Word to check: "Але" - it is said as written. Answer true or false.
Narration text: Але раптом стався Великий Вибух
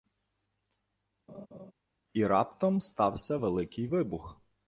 false